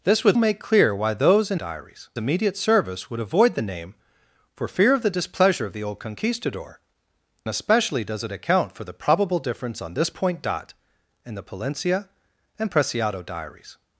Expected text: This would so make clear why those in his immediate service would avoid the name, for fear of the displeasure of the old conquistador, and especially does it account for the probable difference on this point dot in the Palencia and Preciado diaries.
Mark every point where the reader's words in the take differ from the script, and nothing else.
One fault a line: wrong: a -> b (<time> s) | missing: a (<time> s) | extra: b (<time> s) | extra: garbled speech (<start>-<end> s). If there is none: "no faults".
missing: so (0.4 s)
wrong: his -> diaries (1.5 s)
missing: and (6.8 s)